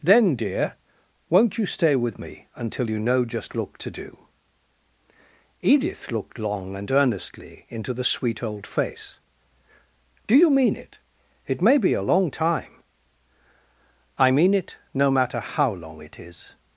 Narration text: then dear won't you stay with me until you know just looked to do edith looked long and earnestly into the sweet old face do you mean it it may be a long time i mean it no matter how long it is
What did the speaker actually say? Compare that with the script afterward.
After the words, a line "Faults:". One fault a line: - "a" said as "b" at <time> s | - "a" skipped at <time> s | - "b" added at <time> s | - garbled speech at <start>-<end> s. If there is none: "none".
then dear won't you stay with me until you know just looked to do edith looked long and earnestly into the sweet old face do you mean it it may be a long time i mean it no matter how long it is
Faults:
none